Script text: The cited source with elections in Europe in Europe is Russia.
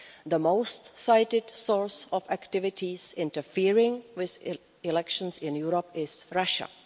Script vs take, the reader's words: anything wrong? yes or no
yes